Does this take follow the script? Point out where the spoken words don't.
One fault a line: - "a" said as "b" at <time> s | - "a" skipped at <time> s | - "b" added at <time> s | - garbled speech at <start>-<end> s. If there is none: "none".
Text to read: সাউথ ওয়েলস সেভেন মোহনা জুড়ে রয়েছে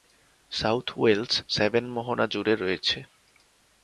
none